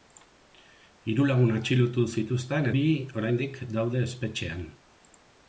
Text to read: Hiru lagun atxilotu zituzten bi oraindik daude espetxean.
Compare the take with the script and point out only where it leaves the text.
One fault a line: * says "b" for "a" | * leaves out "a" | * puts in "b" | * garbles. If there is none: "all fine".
all fine